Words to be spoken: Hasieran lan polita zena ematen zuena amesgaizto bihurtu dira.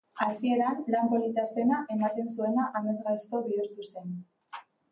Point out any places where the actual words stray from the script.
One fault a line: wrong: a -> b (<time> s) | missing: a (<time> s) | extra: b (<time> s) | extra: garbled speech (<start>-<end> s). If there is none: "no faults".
wrong: dira -> zen (3.9 s)